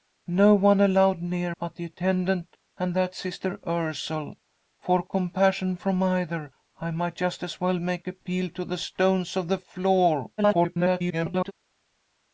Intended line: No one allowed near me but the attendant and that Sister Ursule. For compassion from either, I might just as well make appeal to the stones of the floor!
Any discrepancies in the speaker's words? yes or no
yes